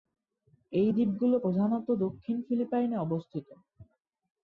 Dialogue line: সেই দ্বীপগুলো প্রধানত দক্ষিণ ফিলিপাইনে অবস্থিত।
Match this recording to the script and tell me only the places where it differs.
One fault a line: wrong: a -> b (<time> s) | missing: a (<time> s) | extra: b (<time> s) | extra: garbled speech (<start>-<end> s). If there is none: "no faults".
wrong: সেই -> এই (0.7 s)